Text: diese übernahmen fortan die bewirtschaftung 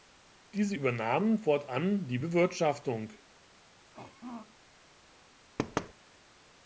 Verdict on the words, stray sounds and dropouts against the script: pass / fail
fail